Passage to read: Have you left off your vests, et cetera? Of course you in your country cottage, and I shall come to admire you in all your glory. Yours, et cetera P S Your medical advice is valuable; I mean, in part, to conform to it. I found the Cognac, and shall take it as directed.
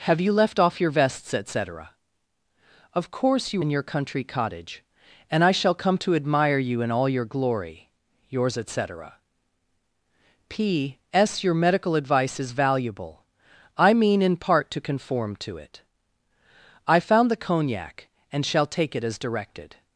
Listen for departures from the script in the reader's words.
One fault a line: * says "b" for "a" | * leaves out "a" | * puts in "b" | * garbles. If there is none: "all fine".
all fine